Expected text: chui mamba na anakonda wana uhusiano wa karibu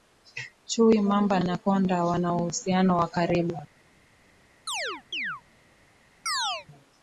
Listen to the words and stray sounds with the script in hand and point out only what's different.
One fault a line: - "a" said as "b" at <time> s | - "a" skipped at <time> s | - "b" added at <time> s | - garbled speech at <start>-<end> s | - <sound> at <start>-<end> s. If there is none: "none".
- "na" skipped at 1.4 s
- chirp at 4.7-5.4 s
- chirp at 6.3-6.7 s